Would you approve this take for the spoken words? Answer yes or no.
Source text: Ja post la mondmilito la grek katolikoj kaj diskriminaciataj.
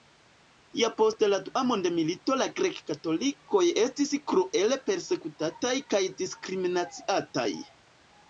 no